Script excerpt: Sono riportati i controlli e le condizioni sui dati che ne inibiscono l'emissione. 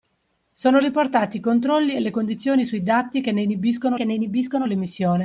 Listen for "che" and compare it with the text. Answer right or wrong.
right